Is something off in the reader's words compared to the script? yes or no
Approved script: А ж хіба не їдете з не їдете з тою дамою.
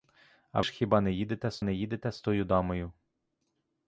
no